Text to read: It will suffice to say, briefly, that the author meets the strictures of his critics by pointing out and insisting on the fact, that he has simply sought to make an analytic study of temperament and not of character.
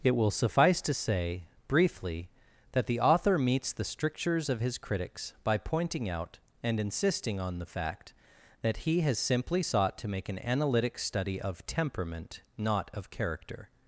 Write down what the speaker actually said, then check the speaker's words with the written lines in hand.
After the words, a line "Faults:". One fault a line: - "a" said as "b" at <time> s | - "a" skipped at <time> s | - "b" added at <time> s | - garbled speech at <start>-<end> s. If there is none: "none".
It will suffice to say, briefly, that the author meets the strictures of his critics by pointing out and insisting on the fact, that he has simply sought to make an analytic study of temperament not of character.
Faults:
- "and" skipped at 12.4 s